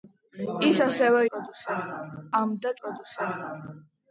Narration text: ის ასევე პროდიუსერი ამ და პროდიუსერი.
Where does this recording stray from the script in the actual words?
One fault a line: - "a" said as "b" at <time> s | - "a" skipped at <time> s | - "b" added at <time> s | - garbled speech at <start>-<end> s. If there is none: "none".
none